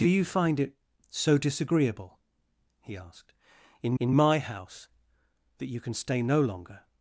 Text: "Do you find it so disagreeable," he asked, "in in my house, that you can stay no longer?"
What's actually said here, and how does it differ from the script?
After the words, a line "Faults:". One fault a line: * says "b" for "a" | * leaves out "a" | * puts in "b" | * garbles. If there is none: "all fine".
"Do you find it so disagreeable," he asked, "in in my house, that you can stay no longer?"
Faults:
all fine